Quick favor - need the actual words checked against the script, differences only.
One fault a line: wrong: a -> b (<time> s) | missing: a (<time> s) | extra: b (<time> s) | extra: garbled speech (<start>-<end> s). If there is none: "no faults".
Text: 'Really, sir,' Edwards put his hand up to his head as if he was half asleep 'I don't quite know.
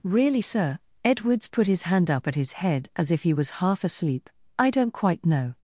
wrong: to -> at (2.3 s)